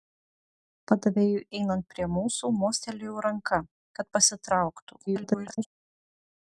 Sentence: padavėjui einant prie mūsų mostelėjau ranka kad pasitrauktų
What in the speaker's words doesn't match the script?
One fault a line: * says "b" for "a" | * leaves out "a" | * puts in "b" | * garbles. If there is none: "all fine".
* garbles